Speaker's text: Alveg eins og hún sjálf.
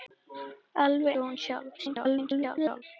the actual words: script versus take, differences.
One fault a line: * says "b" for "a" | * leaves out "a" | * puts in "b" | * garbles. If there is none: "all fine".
* leaves out "eins"
* garbles